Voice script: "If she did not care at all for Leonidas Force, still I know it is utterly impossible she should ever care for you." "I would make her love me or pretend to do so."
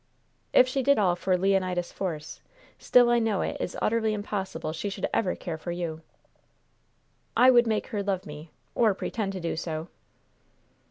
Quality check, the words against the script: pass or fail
fail